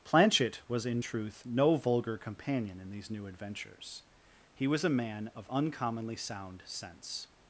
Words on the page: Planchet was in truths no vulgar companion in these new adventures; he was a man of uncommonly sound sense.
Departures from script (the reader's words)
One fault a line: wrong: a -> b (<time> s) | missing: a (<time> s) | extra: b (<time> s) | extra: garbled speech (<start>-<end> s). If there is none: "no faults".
wrong: truths -> truth (1.0 s)